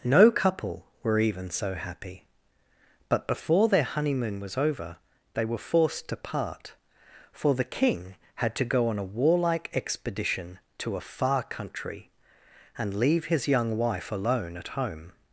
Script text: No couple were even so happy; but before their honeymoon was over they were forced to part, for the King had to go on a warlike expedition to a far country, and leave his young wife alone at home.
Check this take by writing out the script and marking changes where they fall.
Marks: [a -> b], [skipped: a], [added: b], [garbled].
No couple were even so happy; but before their honeymoon was over they were forced to part, for the King had to go on a warlike expedition to a far country, and leave his young wife alone at home.